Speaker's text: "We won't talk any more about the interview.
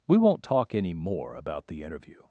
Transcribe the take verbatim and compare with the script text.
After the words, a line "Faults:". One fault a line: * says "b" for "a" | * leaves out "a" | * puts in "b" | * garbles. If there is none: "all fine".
"We won't talk any more about the interview.
Faults:
all fine